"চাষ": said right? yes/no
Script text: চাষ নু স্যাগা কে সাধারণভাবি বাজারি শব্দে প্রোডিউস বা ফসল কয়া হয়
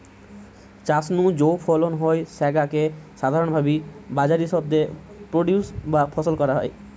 yes